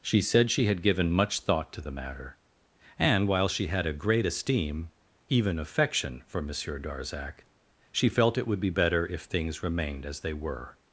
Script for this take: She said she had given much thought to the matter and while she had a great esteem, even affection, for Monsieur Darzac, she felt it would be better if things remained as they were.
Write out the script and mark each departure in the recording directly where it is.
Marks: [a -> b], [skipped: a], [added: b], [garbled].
She said she had given much thought to the matter and while she had a great esteem, even affection, for Monsieur Darzac, she felt it would be better if things remained as they were.